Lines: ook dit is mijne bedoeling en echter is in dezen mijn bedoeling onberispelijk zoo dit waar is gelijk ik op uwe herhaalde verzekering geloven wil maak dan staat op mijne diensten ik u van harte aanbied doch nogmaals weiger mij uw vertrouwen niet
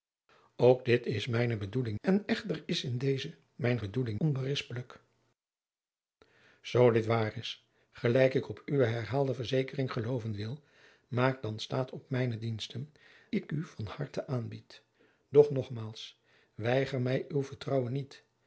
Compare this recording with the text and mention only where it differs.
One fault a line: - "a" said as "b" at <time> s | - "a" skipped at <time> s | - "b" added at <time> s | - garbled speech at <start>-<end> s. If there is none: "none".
none